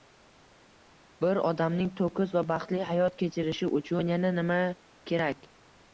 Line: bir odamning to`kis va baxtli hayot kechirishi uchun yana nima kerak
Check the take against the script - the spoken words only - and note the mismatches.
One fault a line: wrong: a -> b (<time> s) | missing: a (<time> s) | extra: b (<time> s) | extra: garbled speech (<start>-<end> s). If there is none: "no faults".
no faults